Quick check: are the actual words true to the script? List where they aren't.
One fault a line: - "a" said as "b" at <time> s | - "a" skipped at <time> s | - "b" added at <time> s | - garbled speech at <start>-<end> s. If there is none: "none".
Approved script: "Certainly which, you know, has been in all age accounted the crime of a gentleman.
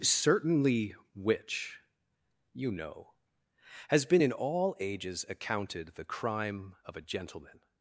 - "age" said as "ages" at 4.8 s